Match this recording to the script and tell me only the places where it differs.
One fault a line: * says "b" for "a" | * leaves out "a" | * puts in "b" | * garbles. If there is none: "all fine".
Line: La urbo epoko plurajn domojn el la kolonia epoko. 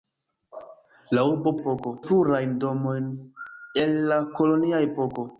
all fine